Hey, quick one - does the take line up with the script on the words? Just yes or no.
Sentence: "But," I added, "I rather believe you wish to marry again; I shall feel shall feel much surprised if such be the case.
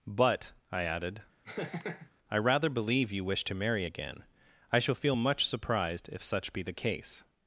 no